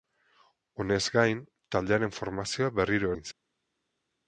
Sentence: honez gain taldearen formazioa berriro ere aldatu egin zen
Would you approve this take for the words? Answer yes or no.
no